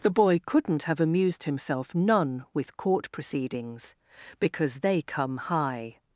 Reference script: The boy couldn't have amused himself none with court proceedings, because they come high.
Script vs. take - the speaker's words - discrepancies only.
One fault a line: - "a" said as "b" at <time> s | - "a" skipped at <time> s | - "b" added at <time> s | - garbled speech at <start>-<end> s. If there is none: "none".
none